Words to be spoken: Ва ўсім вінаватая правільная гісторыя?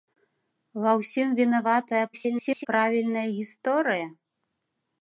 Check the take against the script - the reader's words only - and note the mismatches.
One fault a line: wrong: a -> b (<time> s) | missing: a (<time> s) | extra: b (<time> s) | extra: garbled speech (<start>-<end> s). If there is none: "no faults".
extra: garbled speech (2.1-2.7 s)